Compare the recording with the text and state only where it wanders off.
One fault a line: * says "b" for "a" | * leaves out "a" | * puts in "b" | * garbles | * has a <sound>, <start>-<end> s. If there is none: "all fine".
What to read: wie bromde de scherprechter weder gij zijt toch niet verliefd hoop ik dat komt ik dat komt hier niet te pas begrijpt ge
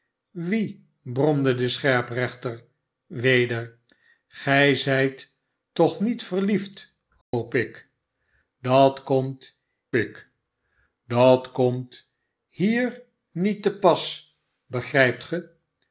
* has a dropout, 7.2-7.3 s